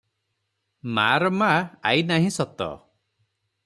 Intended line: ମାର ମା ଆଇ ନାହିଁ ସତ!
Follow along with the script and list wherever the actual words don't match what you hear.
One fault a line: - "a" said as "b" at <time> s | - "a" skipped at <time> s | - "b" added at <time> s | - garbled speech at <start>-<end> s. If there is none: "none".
none